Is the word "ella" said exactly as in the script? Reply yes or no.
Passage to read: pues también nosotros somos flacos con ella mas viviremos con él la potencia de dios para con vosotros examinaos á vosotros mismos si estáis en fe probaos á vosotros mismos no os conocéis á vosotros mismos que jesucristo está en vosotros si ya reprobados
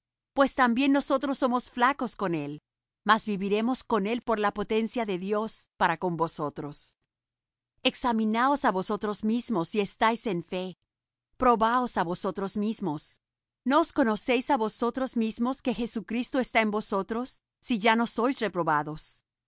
no